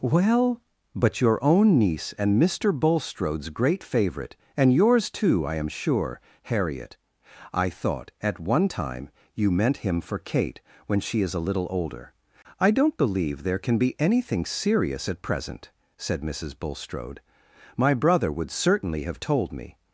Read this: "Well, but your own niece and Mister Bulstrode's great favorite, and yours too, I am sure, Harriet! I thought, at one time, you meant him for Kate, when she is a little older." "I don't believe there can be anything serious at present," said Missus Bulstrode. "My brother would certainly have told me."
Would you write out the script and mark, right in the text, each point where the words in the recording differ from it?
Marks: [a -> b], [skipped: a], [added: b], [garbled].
"Well, but your own niece and Mister Bulstrode's great favorite, and yours too, I am sure, Harriet! I thought, at one time, you meant him for Kate, when she is a little older." "I don't believe there can be anything serious at present," said Missus Bulstrode. "My brother would certainly have told me."